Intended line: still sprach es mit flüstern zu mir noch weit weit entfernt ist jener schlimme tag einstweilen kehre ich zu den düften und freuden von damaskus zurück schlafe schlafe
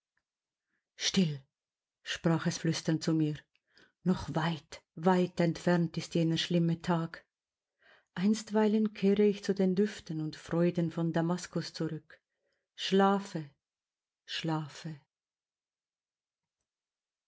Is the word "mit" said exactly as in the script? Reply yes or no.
no